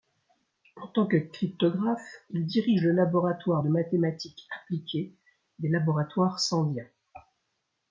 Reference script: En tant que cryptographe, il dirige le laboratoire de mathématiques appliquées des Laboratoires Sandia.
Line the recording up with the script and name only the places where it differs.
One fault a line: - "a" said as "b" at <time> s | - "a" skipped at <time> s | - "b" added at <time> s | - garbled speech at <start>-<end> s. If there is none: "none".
none